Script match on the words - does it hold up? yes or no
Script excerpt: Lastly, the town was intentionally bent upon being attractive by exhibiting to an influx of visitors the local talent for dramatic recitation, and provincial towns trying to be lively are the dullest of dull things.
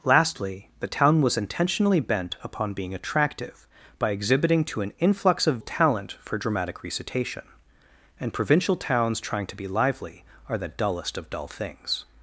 no